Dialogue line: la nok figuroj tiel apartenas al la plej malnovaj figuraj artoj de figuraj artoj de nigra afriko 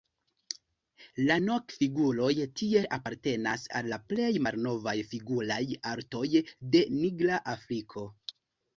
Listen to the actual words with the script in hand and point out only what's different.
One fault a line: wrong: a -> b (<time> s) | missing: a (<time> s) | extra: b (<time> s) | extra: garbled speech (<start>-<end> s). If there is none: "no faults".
missing: figuraj artoj de (6.9 s)